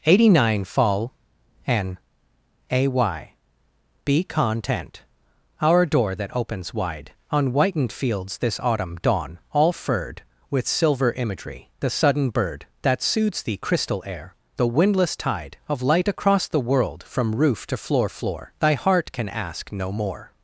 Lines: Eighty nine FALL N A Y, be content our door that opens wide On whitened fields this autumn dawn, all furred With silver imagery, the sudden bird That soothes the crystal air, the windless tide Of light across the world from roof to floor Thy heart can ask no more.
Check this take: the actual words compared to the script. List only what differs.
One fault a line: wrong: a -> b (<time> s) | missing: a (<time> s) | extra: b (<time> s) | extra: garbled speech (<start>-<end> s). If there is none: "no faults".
extra: floor (18.1 s)